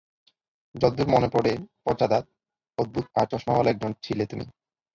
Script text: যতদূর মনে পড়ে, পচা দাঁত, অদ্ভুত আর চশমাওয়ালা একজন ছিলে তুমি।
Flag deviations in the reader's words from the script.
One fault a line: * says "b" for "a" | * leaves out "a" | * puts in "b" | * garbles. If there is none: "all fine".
all fine